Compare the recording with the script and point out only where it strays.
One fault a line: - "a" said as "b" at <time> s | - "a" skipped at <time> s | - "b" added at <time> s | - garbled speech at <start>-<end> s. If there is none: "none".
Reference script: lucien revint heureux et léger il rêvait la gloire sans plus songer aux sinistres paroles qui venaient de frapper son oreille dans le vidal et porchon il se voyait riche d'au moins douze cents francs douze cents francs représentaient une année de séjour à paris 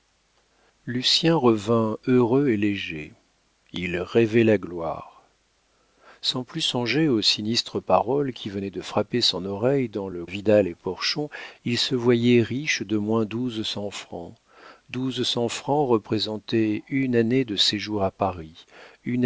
none